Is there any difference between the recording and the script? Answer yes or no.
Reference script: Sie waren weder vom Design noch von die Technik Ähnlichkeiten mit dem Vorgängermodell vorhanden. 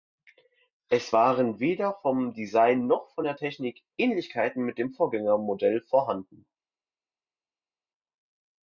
yes